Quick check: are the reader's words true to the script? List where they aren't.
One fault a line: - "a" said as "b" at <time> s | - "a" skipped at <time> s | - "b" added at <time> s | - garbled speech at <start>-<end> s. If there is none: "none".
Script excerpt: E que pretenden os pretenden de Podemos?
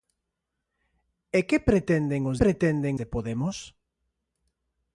none